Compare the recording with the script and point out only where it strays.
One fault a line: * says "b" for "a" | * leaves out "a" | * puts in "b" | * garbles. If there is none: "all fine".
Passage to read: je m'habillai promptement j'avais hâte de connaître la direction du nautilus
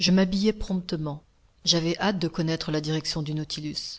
all fine